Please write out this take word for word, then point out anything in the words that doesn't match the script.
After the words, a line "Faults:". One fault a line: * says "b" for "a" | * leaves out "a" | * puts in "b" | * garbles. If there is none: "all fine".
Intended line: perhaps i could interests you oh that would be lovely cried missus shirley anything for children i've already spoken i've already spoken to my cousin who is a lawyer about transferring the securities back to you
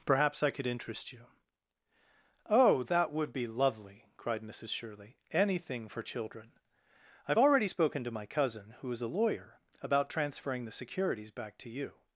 perhaps i could interest you oh that would be lovely cried missus shirley anything for children i've already spoken to my cousin who is a lawyer about transferring the securities back to you
Faults:
* says "interest" for "interests"
* leaves out "i've already spoken"